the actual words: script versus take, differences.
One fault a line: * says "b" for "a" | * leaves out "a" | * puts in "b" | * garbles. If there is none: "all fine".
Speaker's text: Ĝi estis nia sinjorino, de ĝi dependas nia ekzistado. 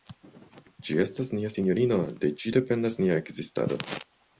* says "estas" for "estis"